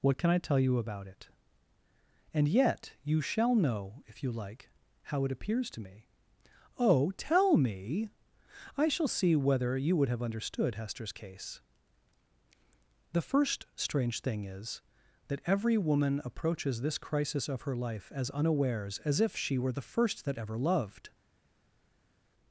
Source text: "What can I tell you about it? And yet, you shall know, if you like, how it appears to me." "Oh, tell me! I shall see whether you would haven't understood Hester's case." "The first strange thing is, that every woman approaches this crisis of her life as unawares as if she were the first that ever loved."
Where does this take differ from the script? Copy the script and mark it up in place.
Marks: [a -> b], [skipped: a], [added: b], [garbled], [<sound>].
"What can I tell you about it? And yet, you shall know, if you like, how it appears to me." "Oh, tell me! I shall see whether you would [haven't -> have] understood Hester's case." "The first strange thing is, that every woman approaches this crisis of her life as unawares as if she were the first that ever loved."